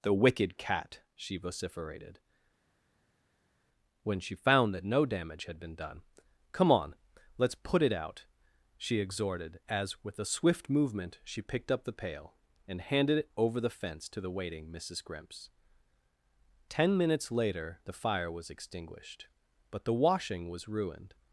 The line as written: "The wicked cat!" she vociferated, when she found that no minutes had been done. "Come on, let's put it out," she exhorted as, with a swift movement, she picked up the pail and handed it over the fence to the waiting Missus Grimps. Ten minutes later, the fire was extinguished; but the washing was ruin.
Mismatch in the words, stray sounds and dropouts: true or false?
true